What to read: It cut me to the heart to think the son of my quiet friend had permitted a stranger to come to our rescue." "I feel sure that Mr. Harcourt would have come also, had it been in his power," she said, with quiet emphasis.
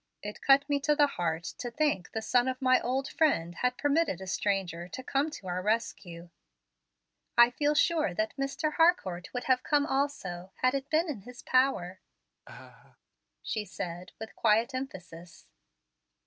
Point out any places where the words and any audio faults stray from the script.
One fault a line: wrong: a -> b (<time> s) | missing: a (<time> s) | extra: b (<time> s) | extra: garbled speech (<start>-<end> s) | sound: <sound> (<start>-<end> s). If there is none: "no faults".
wrong: quiet -> old (2.8 s)
sound: laugh (12.4-13.0 s)